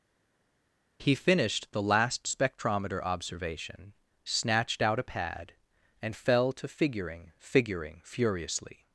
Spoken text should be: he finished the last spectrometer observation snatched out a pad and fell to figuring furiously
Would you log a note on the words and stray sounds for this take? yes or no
yes